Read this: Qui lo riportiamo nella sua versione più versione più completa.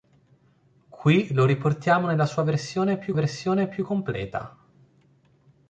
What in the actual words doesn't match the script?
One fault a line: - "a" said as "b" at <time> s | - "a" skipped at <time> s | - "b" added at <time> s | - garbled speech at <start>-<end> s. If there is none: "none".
none